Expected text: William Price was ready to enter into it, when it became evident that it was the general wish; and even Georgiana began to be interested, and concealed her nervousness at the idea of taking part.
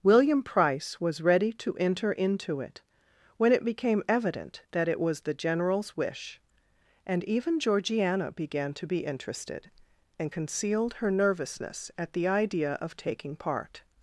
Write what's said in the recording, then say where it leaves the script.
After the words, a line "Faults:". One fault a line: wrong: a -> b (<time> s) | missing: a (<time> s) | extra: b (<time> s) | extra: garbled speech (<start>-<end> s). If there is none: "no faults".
William Price was ready to enter into it, when it became evident that it was the generals wish; and even Georgiana began to be interested, and concealed her nervousness at the idea of taking part.
Faults:
wrong: general -> generals (5.3 s)